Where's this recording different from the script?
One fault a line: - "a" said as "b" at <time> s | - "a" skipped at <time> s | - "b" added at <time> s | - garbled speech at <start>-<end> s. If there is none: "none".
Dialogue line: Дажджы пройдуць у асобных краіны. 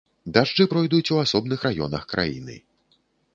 - "раёнах" added at 1.7 s